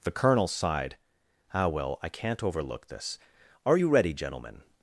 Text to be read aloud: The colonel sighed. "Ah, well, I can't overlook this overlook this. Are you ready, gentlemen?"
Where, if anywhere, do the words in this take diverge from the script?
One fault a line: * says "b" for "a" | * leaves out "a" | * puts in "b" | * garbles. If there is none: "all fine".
* leaves out "overlook this"